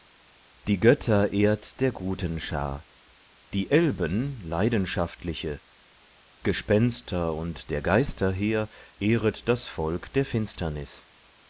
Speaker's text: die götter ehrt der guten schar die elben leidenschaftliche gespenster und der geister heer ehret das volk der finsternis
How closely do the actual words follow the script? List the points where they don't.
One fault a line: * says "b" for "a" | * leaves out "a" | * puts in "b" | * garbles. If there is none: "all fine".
all fine